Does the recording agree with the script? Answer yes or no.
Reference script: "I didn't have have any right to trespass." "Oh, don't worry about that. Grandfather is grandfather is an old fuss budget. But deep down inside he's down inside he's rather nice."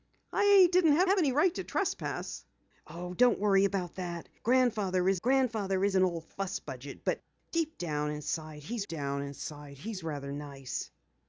yes